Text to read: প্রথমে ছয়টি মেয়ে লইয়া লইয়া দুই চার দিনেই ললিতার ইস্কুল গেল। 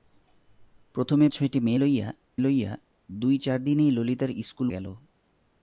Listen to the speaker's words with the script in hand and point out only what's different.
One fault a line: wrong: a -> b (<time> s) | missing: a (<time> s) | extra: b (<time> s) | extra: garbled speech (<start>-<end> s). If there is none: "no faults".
no faults